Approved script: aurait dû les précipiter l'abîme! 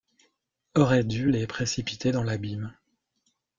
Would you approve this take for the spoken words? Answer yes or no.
no